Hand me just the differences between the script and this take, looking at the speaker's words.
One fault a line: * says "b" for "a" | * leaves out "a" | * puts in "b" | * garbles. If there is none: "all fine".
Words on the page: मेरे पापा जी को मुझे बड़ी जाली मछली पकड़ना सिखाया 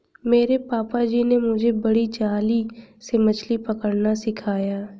* says "ने" for "को"
* puts in "से"